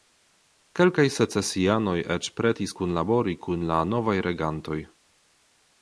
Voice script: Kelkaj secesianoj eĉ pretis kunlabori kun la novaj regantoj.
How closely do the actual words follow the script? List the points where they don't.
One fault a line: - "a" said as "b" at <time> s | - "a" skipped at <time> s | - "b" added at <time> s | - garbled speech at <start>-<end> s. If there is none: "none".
none